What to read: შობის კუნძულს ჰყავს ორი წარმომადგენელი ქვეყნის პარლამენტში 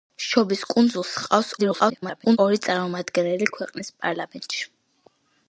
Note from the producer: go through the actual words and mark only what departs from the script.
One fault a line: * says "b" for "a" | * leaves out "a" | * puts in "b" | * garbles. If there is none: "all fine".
* garbles